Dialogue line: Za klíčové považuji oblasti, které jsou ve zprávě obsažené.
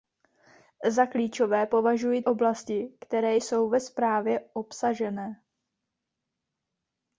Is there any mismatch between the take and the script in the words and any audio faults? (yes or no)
no